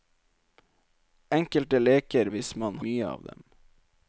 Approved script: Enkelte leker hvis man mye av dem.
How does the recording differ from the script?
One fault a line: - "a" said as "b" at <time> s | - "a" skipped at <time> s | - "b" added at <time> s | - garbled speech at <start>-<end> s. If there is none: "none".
none